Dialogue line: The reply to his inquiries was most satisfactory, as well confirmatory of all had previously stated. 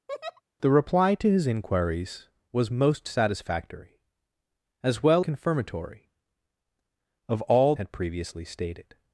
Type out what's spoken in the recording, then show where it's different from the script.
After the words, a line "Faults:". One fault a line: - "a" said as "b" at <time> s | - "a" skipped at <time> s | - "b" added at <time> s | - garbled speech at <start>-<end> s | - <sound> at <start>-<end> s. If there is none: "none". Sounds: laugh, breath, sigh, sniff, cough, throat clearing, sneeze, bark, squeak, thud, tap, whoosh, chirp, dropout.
The reply to his inquiries was most satisfactory, as well confirmatory of all had previously stated.
Faults:
- laugh at 0.1-0.4 s